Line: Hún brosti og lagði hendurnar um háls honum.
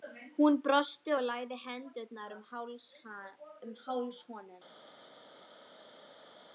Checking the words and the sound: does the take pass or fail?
pass